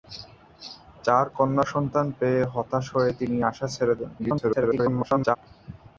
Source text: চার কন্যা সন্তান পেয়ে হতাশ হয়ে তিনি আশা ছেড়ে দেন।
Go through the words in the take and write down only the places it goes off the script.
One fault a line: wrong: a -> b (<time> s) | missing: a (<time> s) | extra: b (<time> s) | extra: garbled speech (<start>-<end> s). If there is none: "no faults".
extra: garbled speech (4.2-5.4 s)